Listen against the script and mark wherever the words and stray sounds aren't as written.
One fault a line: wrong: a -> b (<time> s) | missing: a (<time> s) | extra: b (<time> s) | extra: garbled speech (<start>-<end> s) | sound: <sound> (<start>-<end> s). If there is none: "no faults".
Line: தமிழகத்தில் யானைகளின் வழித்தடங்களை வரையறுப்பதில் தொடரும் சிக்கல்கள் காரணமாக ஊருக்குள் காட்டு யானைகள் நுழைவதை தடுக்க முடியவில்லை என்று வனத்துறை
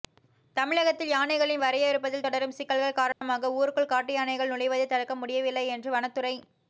missing: வழித்தடங்களை (1.6 s)
sound: dropout (3.1-3.2 s)